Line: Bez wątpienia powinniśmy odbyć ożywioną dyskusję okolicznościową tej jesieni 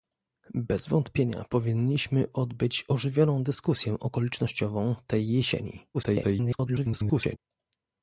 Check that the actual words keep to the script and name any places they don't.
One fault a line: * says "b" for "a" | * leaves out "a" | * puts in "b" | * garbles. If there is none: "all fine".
* garbles